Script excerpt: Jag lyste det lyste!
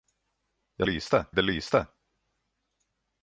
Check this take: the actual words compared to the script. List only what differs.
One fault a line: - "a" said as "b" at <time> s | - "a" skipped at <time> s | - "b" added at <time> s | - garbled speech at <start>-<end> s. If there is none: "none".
none